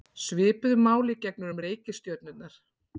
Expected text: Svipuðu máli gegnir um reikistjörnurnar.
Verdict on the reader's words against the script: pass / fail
pass